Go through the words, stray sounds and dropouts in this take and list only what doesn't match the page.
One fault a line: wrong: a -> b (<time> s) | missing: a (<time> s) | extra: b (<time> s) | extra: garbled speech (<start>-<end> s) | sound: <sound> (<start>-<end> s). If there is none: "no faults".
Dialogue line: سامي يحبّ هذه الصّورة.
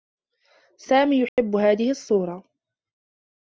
sound: dropout (1.3-1.4 s)